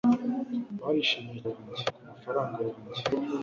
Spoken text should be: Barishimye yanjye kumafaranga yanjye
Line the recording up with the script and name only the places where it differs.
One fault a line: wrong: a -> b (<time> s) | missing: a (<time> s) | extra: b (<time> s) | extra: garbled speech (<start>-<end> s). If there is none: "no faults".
no faults